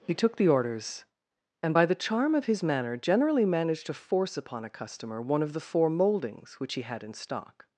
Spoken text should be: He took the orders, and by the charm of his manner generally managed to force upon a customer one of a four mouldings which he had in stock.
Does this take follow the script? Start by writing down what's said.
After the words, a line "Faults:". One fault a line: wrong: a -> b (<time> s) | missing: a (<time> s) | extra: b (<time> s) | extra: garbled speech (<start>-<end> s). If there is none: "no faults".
He took the orders, and by the charm of his manner generally managed to force upon a customer one of the four mouldings which he had in stock.
Faults:
wrong: a -> the (5.5 s)